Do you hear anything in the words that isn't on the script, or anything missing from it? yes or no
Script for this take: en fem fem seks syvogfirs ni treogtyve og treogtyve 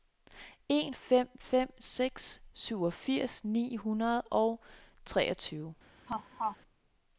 yes